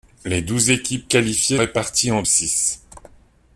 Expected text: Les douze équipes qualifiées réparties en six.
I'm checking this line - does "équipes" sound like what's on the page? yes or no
yes